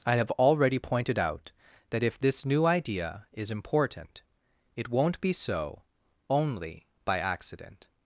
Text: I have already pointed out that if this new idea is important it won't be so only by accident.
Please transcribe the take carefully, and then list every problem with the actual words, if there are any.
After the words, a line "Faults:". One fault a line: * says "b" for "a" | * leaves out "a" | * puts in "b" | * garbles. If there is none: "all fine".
I have already pointed out that if this new idea is important it won't be so only by accident.
Faults:
all fine